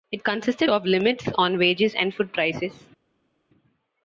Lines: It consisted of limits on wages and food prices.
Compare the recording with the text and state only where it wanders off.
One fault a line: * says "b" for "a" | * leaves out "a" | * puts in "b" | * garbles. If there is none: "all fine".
all fine